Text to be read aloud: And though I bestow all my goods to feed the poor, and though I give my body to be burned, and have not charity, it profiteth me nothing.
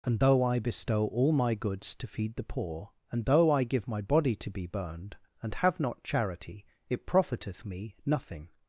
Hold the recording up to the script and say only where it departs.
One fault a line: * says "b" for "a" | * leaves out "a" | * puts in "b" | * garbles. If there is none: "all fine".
all fine